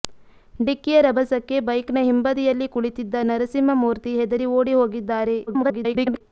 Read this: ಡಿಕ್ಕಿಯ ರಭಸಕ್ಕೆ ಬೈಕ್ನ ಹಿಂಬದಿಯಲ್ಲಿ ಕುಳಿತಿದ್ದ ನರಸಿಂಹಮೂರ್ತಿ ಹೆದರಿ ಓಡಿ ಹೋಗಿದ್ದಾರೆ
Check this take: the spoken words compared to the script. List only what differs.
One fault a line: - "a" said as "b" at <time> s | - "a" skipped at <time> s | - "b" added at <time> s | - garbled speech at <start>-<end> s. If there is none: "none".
- garbled speech at 5.5-6.2 s